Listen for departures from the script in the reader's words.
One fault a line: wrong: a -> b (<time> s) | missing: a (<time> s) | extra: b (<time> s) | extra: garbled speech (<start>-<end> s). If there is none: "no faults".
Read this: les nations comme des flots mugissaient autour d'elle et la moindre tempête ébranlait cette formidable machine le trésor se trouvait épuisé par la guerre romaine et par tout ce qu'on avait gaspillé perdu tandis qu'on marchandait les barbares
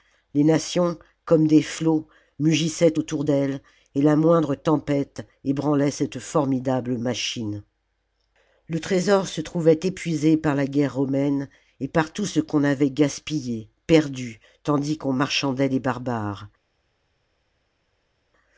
no faults